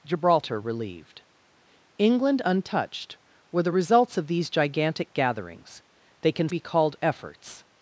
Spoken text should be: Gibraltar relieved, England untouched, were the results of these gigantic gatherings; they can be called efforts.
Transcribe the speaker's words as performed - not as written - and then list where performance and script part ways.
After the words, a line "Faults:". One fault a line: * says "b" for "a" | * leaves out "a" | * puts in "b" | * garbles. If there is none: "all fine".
Gibraltar relieved, England untouched, were the results of these gigantic gatherings; they can be called efforts.
Faults:
all fine